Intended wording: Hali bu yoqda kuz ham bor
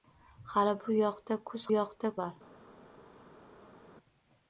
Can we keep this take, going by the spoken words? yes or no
no